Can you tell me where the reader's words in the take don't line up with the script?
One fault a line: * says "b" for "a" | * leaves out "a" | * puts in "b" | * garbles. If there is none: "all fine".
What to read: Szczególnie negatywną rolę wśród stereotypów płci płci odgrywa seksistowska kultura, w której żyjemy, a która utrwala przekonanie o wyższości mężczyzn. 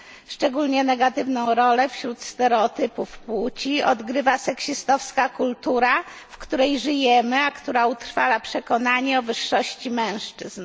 * leaves out "płci"